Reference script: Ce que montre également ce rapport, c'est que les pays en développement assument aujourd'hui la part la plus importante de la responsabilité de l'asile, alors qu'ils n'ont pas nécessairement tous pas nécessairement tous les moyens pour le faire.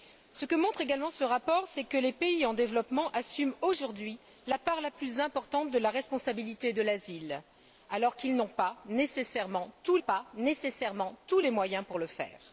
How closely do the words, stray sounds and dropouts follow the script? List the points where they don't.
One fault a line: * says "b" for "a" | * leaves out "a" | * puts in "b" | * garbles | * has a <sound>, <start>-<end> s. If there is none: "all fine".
all fine